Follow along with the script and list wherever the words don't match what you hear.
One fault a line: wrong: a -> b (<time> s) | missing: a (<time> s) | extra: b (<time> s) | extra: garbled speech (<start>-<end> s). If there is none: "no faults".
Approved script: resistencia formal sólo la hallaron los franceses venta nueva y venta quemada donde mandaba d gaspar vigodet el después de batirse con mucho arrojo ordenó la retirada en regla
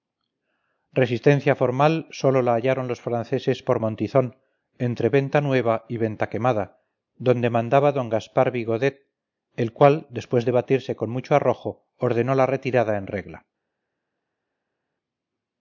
extra: por montizón entre (3.6 s)
extra: cual (9.8 s)